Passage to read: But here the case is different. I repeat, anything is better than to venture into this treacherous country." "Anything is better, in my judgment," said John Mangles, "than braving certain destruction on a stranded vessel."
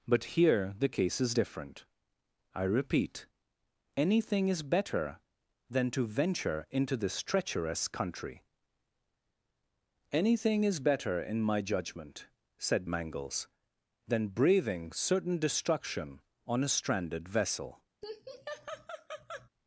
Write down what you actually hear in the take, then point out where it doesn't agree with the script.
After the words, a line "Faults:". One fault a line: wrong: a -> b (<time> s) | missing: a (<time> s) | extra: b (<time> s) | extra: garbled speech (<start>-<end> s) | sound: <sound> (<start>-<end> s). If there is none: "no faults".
But here the case is different. I repeat, anything is better than to venture into this treacherous country." "Anything is better, in my judgment," said Mangles, "than braving certain destruction on a stranded vessel."
Faults:
missing: John (12.9 s)
sound: laugh (18.0-19.5 s)